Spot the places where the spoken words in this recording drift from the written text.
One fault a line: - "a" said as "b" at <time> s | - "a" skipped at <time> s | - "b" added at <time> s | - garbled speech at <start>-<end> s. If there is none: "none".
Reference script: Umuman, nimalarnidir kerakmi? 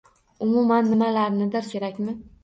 none